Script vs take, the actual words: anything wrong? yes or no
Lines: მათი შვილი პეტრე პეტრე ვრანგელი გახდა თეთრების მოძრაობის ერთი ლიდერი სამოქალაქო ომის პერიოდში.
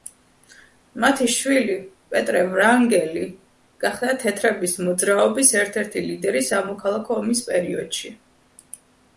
yes